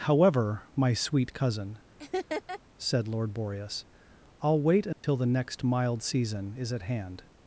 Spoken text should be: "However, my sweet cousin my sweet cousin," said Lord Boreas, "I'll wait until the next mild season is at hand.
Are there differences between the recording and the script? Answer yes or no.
yes